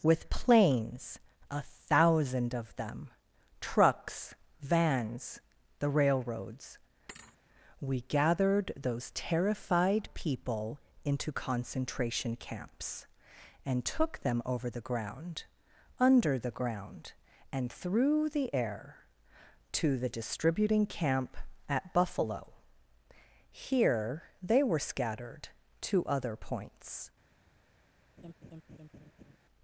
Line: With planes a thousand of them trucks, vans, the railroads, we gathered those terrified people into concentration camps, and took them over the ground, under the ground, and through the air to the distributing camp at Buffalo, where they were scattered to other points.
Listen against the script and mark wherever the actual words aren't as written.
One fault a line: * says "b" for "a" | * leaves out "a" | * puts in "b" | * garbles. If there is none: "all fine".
* says "here" for "where"